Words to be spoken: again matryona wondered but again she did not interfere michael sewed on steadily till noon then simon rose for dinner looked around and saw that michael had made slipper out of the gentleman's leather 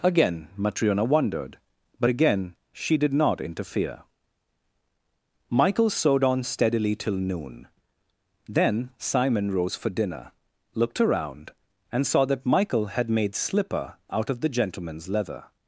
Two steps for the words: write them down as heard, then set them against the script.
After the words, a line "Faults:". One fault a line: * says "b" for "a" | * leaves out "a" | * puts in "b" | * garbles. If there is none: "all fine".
again matryona wondered but again she did not interfere michael sewed on steadily till noon then simon rose for dinner looked around and saw that michael had made slipper out of the gentleman's leather
Faults:
all fine